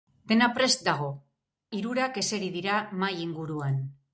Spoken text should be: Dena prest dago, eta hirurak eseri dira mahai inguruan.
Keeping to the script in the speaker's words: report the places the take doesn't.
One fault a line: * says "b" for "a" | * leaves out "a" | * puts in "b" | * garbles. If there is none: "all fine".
* leaves out "eta"